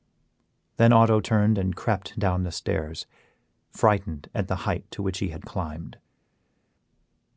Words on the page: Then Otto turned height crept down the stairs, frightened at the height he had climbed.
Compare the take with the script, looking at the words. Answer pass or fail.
fail